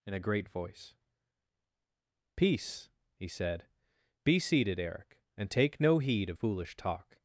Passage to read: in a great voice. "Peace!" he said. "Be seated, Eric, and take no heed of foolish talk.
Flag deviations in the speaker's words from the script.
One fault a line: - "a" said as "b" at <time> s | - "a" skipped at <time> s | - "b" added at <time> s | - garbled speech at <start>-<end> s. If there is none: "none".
none